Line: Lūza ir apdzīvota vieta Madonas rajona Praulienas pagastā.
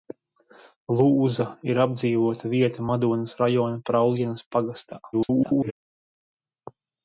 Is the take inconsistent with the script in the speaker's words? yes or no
yes